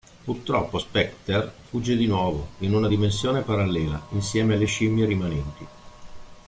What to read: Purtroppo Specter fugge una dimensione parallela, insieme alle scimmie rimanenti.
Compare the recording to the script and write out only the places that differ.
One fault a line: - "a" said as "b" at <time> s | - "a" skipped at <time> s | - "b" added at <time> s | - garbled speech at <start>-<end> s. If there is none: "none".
- "di nuovo in" added at 1.9 s